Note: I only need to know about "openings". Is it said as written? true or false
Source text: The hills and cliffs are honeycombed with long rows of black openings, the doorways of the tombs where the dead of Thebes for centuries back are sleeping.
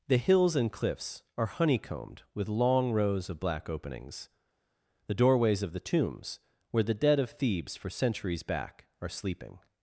true